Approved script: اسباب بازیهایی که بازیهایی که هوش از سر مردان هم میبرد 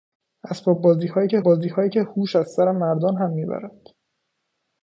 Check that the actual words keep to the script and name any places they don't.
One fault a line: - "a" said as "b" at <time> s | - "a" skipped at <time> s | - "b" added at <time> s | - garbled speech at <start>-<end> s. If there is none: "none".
none